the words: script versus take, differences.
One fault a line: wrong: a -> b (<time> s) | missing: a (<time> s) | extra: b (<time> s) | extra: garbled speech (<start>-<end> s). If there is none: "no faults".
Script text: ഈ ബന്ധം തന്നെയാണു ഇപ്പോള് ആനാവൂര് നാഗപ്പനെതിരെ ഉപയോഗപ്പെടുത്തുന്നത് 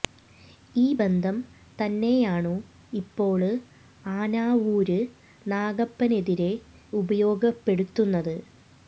no faults